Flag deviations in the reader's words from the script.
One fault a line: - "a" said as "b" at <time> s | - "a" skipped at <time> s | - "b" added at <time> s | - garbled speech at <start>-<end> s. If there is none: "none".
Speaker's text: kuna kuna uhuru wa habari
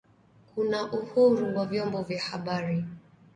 - "kuna" skipped at 0.9 s
- "vyombo vya" added at 1.6 s